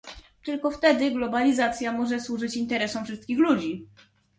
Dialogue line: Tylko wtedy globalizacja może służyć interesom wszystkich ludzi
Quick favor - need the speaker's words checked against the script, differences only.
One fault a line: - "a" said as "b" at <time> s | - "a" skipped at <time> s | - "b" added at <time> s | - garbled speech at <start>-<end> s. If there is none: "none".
none